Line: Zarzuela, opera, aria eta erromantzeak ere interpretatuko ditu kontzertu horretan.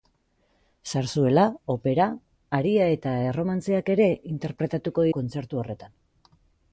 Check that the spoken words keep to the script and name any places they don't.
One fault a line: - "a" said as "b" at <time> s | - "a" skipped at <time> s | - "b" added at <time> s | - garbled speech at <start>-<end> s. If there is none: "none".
- "ditu" skipped at 5.1 s